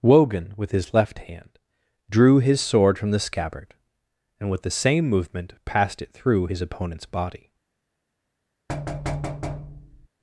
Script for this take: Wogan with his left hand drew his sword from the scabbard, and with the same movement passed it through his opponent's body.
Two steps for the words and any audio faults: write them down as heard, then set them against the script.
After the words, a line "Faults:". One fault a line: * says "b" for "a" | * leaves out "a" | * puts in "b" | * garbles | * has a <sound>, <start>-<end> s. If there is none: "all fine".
Wogan with his left hand drew his sword from the scabbard, and with the same movement passed it through his opponent's body.
Faults:
* has a thud, 8.7-10.1 s